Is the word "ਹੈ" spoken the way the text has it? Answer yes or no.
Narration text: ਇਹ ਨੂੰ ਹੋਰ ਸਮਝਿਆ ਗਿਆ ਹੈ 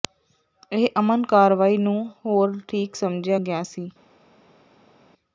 no